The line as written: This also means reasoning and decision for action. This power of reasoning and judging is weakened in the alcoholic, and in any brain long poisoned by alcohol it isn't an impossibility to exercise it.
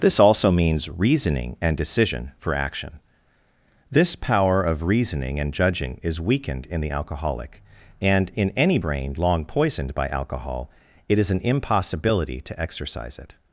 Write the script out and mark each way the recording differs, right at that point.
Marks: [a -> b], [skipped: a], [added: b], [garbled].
This also means reasoning and decision for action. This power of reasoning and judging is weakened in the alcoholic, and in any brain long poisoned by alcohol it [isn't -> is] an impossibility to exercise it.